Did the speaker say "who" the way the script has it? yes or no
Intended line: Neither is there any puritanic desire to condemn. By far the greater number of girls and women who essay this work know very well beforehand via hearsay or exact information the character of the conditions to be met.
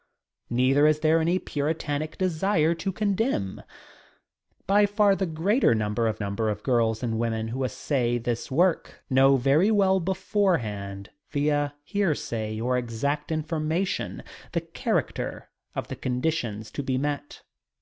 yes